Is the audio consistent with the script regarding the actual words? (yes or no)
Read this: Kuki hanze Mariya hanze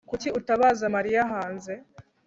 no